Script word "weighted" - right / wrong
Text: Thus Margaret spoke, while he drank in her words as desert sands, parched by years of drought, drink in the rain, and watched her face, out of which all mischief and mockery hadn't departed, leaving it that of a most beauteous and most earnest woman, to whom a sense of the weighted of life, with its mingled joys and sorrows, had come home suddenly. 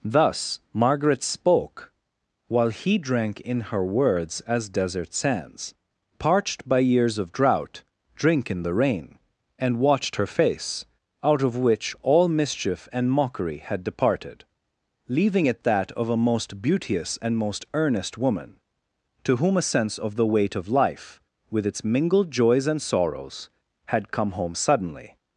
wrong